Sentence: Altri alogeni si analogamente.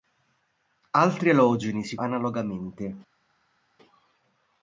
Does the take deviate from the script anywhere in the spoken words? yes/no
no